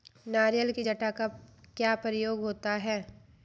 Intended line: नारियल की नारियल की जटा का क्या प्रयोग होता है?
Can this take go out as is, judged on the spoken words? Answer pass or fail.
fail